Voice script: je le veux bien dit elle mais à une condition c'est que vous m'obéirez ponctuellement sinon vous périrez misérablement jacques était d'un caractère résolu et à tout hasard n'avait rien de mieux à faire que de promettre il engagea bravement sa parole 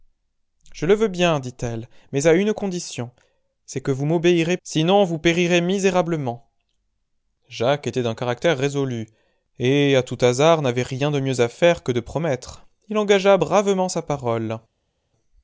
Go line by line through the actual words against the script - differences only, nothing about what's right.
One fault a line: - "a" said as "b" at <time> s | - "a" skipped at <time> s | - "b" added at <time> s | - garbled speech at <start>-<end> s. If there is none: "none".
- "ponctuellement" skipped at 4.6 s